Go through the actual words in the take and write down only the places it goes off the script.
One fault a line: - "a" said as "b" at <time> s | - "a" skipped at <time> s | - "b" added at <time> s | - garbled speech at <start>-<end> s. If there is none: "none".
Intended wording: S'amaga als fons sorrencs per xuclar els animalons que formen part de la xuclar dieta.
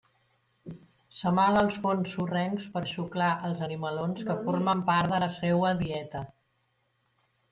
- "xuclar" said as "seua" at 5.4 s